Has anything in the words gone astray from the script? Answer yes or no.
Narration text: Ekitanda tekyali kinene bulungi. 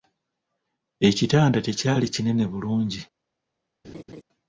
no